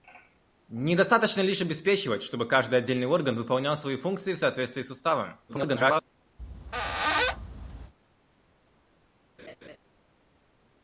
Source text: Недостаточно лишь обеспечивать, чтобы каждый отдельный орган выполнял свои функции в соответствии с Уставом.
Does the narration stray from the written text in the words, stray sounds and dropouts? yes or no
yes